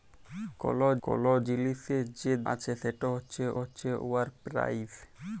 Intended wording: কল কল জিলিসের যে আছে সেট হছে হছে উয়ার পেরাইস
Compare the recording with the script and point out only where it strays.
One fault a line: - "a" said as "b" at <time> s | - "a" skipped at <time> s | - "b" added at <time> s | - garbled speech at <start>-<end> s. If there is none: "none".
none